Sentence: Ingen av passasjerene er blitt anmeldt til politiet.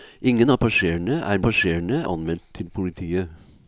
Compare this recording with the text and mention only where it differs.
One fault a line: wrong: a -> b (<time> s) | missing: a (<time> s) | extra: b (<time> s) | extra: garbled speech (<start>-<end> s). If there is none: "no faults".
wrong: blitt -> passasjerene (1.4 s)